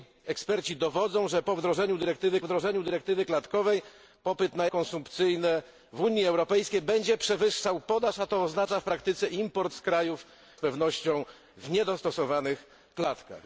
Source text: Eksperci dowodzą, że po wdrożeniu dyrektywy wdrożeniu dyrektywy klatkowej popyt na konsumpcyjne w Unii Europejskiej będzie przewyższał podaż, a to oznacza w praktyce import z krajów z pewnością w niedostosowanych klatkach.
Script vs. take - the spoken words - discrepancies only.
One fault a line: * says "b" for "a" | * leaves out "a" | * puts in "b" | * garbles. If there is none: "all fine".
all fine